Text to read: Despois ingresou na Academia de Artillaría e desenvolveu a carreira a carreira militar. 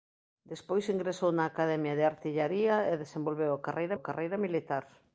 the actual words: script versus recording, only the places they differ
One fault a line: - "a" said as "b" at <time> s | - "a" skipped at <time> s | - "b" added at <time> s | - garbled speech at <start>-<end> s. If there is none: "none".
none